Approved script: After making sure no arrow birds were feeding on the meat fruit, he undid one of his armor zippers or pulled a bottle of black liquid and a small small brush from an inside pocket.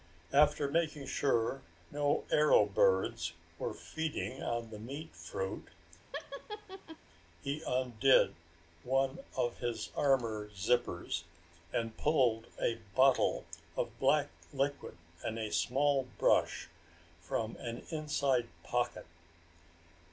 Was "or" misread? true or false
true